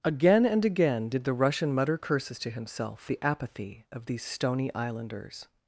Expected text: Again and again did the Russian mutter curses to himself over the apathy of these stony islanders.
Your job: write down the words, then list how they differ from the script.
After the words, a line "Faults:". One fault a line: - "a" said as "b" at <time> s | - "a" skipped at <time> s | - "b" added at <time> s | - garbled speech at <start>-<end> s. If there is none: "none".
Again and again did the Russian mutter curses to himself the apathy of these stony islanders.
Faults:
- "over" skipped at 3.1 s